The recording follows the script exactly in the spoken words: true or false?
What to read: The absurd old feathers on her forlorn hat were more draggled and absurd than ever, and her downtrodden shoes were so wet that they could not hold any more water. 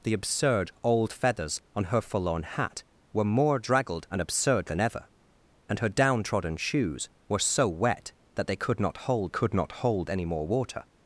false